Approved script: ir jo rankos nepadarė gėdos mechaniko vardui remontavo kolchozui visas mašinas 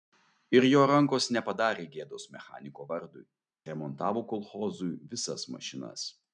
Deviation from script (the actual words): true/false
false